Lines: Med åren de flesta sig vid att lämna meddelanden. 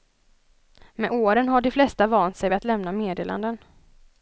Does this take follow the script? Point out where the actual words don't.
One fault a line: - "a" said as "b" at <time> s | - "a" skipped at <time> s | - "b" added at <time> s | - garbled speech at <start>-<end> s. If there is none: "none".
- "har" added at 1.5 s
- "vant" added at 2.1 s